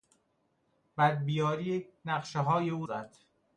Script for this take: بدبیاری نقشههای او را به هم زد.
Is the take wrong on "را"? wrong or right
wrong